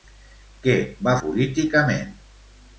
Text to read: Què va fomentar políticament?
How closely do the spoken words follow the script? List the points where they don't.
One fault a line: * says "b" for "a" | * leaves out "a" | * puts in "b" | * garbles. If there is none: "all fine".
* leaves out "fomentar"